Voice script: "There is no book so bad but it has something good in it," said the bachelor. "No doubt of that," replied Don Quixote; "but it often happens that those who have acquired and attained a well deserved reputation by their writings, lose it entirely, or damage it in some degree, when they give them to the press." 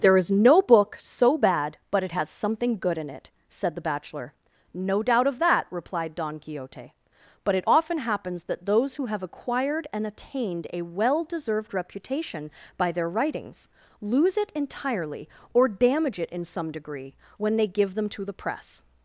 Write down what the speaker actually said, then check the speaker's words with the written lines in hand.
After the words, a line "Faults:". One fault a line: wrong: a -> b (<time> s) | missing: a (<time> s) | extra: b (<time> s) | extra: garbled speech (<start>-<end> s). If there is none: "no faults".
"There is no book so bad but it has something good in it," said the bachelor. "No doubt of that," replied Don Quixote; "but it often happens that those who have acquired and attained a well deserved reputation by their writings, lose it entirely, or damage it in some degree, when they give them to the press."
Faults:
no faults